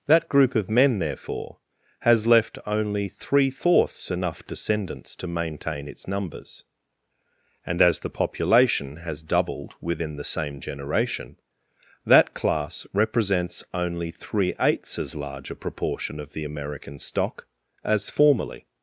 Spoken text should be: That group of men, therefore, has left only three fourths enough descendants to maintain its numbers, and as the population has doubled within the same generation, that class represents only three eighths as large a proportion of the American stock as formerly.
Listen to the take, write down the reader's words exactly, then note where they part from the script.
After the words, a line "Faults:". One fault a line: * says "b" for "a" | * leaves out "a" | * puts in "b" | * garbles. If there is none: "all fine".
That group of men, therefore, has left only three fourths enough descendants to maintain its numbers, and as the population has doubled within the same generation, that class represents only three eighths as large a proportion of the American stock as formerly.
Faults:
all fine